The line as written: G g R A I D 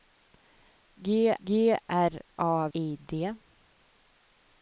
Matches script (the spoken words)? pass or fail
pass